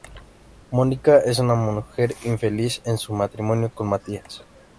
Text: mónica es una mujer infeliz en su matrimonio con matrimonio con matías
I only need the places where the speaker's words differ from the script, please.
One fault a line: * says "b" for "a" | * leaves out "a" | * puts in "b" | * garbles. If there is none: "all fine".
* leaves out "matrimonio con"